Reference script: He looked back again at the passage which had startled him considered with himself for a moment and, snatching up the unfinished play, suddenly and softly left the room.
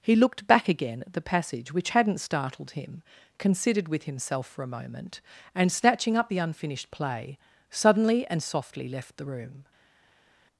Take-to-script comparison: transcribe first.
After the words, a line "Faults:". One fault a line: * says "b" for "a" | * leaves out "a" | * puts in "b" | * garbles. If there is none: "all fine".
He looked back again at the passage which hadn't startled him considered with himself for a moment and, snatching up the unfinished play, suddenly and softly left the room.
Faults:
* says "hadn't" for "had"